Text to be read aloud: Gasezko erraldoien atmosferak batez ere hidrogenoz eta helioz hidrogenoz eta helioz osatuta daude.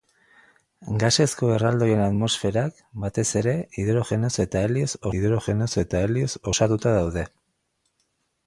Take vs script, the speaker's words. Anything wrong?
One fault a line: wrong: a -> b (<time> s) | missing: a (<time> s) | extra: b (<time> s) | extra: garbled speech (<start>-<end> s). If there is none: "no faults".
no faults